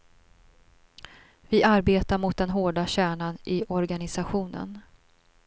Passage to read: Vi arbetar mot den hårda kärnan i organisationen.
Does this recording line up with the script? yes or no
yes